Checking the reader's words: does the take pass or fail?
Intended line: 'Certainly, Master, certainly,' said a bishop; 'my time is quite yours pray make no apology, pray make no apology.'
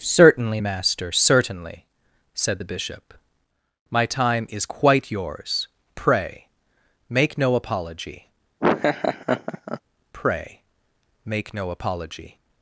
fail